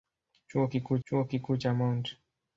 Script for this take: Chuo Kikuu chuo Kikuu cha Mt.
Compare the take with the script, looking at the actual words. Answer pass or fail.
pass